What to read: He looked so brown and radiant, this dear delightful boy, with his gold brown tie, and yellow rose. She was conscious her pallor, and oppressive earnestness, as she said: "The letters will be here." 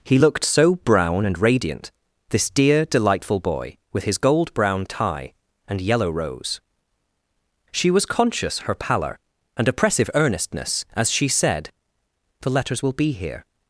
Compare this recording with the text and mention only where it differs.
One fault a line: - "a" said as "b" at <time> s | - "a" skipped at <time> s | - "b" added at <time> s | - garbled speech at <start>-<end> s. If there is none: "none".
none